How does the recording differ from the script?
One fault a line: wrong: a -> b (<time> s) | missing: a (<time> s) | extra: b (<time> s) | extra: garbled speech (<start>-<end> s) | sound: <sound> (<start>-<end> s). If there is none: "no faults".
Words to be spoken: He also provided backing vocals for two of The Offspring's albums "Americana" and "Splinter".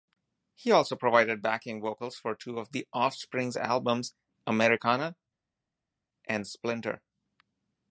no faults